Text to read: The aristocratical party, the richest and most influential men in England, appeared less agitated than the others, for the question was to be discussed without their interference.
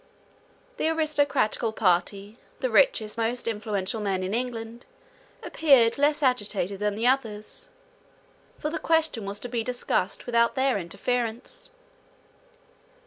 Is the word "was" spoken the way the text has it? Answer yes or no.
yes